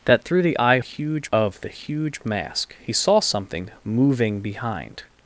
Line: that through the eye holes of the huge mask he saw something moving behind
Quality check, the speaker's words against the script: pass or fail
fail